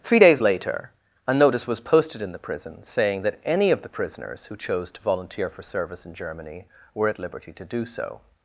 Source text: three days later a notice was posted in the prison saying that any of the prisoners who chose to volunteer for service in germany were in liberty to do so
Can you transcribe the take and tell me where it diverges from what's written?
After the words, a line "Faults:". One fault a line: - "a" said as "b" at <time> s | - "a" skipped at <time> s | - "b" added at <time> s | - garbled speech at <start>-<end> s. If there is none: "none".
three days later a notice was posted in the prison saying that any of the prisoners who chose to volunteer for service in germany were at liberty to do so
Faults:
- "in" said as "at" at 7.1 s